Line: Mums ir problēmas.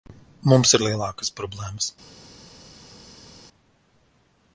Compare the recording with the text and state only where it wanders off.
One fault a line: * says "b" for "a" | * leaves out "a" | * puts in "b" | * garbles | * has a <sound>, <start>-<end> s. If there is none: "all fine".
* puts in "lielākas"